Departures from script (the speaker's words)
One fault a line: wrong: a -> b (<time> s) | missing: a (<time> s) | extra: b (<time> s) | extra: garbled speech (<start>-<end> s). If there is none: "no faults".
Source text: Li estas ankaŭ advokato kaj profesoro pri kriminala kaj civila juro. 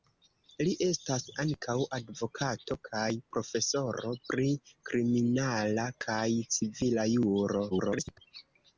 extra: garbled speech (7.7-8.2 s)